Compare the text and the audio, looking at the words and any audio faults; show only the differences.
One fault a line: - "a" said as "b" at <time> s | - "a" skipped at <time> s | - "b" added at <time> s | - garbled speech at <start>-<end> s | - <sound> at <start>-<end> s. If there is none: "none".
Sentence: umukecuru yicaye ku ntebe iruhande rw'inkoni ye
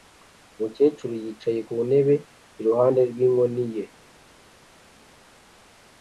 none